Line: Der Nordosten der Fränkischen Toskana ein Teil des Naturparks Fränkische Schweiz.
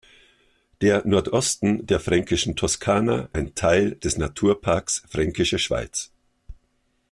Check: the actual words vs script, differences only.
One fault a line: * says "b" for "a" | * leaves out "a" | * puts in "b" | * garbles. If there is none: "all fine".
all fine